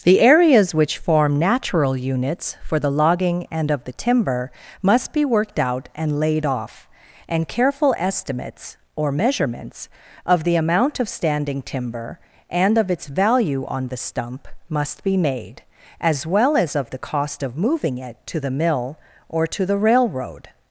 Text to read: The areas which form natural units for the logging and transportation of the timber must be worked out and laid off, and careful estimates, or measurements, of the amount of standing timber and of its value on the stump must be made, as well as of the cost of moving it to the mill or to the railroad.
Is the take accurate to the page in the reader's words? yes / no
no